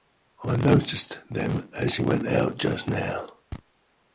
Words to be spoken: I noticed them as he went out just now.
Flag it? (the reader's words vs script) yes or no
no